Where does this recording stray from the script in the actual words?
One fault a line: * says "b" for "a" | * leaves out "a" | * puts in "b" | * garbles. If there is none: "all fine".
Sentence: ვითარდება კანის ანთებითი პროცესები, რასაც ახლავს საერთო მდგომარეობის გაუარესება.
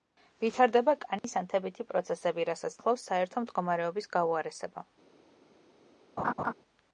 all fine